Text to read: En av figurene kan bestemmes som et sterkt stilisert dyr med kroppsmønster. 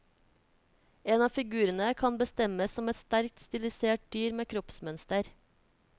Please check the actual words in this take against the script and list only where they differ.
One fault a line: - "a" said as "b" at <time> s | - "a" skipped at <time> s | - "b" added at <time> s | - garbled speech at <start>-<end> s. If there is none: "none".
none